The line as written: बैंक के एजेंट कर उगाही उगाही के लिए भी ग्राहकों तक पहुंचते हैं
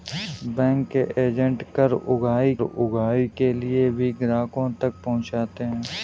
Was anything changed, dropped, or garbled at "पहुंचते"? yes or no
no